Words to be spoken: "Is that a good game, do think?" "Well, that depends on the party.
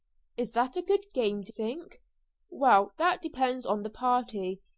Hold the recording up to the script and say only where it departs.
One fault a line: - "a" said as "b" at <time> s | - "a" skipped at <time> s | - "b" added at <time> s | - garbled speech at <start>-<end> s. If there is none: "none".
none